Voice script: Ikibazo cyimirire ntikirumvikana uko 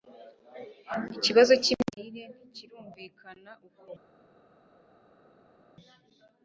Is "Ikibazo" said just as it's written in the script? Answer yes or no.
yes